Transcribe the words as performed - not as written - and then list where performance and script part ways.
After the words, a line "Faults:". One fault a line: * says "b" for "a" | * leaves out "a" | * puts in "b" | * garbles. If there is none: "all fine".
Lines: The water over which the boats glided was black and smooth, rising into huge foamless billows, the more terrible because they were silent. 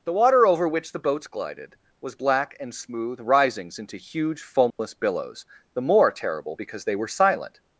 The water over which the boats glided was black and smooth, risings into huge foamless billows, the more terrible because they were silent.
Faults:
* says "risings" for "rising"